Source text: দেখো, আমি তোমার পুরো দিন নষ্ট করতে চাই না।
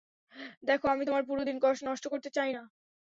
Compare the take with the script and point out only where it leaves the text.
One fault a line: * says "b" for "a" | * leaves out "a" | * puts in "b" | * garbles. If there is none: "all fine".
all fine